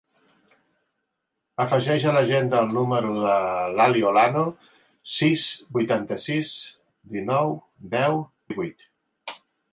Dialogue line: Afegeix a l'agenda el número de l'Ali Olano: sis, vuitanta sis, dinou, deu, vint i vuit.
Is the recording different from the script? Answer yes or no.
yes